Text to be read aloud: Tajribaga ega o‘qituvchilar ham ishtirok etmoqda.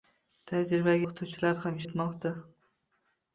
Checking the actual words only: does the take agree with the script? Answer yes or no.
no